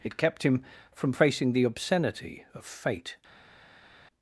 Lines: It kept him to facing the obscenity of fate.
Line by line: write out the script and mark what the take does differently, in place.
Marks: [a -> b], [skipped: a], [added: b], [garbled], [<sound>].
It kept him [to -> from] facing the obscenity of fate.